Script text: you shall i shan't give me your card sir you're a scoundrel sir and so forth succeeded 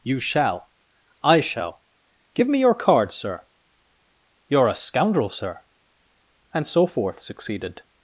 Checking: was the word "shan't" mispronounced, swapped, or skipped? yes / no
yes